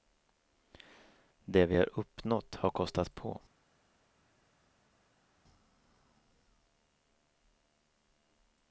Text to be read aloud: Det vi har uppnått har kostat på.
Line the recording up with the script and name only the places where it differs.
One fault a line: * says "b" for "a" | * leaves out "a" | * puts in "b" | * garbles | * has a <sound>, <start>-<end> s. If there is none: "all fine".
all fine